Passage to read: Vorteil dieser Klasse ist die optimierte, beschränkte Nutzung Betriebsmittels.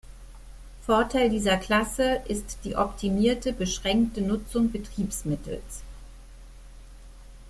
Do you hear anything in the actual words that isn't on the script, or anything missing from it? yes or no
no